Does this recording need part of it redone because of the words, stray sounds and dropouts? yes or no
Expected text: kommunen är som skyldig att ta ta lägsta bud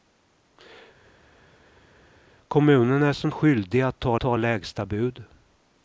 no